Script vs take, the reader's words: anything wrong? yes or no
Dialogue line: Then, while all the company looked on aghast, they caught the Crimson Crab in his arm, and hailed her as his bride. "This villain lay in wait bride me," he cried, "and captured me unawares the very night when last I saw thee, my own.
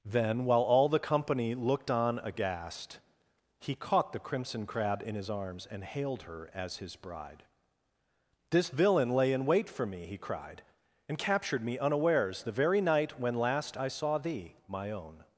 yes